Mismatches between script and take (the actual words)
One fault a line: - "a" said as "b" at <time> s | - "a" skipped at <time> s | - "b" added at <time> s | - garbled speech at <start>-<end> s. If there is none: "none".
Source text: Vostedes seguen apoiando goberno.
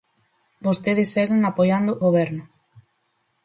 none